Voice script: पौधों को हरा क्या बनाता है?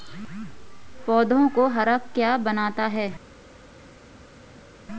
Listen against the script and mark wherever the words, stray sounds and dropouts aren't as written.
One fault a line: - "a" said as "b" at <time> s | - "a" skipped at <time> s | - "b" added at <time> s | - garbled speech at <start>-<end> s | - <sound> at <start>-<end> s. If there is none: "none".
none